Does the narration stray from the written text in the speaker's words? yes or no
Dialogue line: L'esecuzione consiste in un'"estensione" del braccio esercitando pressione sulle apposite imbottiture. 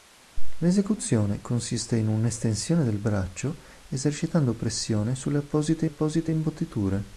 yes